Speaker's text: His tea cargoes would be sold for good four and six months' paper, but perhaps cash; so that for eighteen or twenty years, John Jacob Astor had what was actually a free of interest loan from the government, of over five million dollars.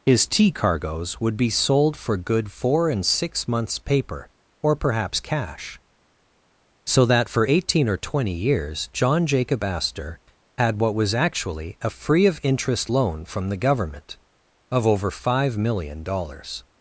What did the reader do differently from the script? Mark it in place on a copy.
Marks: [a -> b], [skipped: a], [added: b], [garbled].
His tea cargoes would be sold for good four and six months' paper, [but -> or] perhaps cash; so that for eighteen or twenty years, John Jacob Astor had what was actually a free of interest loan from the government, of over five million dollars.